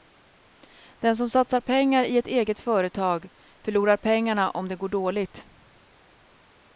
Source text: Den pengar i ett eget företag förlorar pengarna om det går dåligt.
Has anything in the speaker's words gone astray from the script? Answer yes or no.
yes